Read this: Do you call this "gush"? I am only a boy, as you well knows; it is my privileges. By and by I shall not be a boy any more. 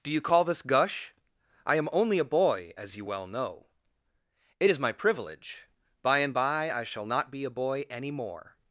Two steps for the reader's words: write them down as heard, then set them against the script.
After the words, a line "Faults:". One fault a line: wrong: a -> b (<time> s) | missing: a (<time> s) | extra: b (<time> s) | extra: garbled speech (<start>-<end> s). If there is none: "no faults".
Do you call this "gush"? I am only a boy, as you well know; it is my privilege. By and by I shall not be a boy any more.
Faults:
wrong: knows -> know (3.3 s)
wrong: privileges -> privilege (4.9 s)